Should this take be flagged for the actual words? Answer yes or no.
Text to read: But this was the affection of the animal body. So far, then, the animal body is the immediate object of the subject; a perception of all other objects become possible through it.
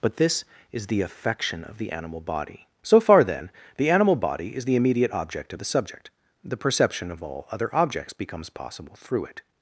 yes